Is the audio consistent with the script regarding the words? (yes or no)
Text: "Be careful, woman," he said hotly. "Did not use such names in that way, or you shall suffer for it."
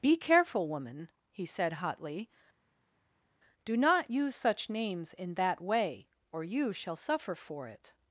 no